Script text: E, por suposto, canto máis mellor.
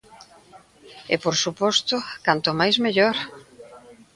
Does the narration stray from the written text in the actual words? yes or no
no